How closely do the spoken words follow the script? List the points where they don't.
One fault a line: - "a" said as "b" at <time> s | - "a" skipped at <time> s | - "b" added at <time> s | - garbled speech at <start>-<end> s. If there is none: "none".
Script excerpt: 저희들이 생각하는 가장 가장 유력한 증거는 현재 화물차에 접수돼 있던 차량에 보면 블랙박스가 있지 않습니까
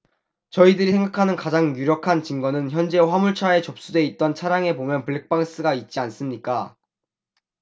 - "가장" skipped at 1.8 s